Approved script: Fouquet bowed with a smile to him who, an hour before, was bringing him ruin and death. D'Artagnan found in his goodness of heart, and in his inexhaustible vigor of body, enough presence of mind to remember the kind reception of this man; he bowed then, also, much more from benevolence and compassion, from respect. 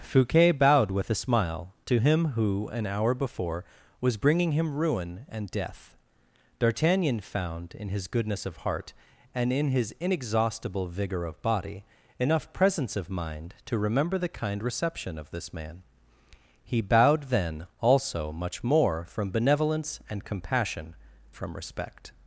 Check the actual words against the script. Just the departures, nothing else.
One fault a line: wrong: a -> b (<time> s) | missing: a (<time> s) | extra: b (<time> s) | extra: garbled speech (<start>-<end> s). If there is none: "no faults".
no faults